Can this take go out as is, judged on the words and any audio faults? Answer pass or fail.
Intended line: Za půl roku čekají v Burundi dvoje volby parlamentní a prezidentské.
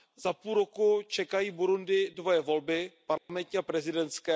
fail